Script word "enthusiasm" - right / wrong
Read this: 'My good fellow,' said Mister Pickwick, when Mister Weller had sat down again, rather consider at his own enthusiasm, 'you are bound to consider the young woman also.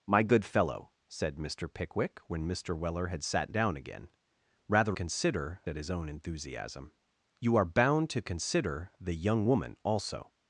right